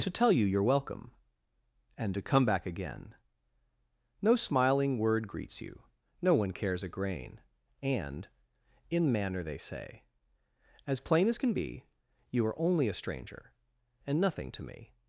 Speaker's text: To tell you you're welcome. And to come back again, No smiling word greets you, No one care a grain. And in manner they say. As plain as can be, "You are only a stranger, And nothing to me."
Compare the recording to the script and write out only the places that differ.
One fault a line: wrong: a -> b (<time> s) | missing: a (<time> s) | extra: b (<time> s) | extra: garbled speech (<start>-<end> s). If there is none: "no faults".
wrong: care -> cares (6.5 s)